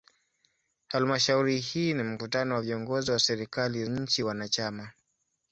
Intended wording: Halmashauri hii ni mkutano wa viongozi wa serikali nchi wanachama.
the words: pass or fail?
pass